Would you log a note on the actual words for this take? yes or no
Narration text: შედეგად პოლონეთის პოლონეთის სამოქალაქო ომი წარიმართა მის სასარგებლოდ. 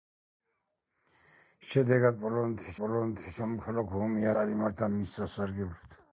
no